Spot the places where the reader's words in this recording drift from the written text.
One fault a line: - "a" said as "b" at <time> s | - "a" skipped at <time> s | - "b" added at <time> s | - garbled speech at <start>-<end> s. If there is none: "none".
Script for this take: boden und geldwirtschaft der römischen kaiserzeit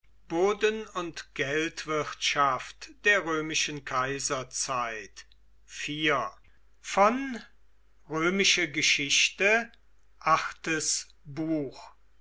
none